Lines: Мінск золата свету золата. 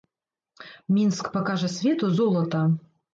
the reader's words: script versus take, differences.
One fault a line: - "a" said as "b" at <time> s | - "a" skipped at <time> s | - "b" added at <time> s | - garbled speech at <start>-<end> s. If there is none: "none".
- "золата" said as "пакажа" at 1.4 s